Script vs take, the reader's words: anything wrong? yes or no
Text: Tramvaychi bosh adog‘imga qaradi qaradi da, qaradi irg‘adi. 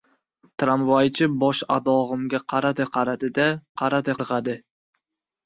no